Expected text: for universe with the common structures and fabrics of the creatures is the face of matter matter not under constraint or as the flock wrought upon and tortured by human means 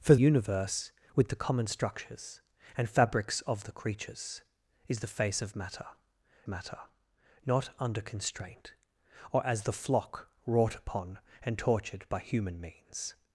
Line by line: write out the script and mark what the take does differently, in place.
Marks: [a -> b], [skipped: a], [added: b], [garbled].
for universe with the common structures and fabrics of the creatures is the face of matter matter not under constraint or as the flock wrought upon and tortured by human means